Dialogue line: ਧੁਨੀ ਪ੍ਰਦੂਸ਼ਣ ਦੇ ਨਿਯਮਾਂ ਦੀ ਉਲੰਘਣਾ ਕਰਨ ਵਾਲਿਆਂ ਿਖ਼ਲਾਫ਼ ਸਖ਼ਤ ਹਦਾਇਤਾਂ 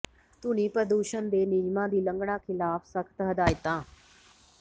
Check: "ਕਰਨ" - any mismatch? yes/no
yes